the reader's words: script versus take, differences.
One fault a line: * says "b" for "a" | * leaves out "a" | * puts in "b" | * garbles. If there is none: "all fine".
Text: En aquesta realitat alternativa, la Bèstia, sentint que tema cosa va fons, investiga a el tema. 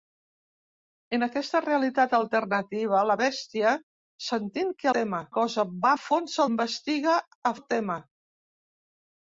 all fine